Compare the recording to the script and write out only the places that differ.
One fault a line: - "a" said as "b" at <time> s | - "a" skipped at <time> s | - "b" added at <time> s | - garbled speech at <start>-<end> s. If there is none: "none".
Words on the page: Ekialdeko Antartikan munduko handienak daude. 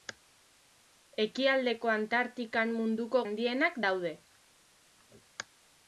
none